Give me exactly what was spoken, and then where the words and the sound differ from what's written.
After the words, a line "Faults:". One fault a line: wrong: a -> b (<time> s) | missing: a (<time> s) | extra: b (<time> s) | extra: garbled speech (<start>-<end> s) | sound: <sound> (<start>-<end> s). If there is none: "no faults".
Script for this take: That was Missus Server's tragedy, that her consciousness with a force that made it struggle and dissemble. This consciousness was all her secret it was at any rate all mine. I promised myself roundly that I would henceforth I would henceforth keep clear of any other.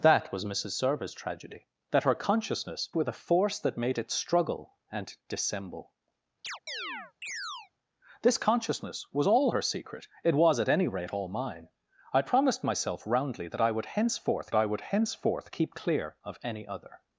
That was Missus Server's tragedy, that her consciousness with a force that made it struggle and dissemble. This consciousness was all her secret it was at any rate all mine. I promised myself roundly that I would henceforth I would henceforth keep clear of any other.
Faults:
sound: chirp (6.4-7.7 s)